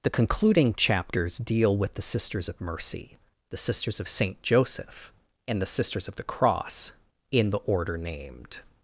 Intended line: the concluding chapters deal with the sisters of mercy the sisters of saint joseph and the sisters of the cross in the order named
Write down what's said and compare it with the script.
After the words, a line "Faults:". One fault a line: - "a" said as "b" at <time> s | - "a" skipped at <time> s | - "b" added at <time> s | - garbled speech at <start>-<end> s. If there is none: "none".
the concluding chapters deal with the sisters of mercy the sisters of saint joseph and the sisters of the cross in the order named
Faults:
none